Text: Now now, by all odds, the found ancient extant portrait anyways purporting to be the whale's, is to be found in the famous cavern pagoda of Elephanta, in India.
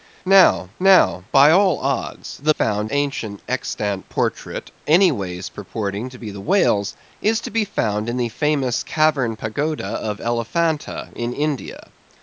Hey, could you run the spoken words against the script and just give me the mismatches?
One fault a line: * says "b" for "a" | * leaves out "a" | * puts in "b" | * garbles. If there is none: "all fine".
all fine